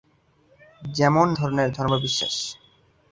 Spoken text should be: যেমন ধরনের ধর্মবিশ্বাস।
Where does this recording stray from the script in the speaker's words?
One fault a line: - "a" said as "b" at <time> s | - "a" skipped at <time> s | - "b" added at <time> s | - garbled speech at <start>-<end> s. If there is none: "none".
none